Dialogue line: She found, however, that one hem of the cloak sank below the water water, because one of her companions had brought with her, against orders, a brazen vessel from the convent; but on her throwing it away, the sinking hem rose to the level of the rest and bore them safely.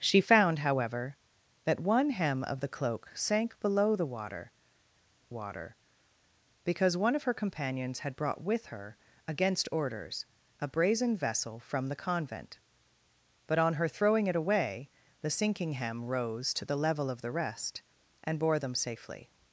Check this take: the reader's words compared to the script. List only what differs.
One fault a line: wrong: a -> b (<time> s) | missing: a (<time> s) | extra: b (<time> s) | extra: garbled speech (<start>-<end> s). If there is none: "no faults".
no faults